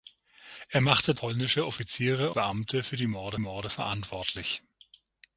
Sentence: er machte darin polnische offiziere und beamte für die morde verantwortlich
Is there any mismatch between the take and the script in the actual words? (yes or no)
yes